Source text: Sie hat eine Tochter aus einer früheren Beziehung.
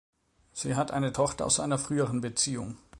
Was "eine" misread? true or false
false